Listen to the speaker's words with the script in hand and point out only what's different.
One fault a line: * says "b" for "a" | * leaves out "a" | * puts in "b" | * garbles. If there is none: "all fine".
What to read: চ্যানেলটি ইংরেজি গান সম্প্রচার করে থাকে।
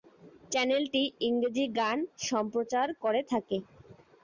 all fine